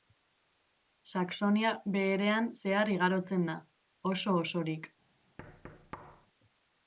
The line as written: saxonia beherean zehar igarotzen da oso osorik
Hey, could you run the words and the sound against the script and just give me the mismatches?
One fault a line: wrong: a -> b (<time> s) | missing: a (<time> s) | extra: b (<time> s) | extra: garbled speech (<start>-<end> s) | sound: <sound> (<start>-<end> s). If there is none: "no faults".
sound: thud (5.4-6.3 s)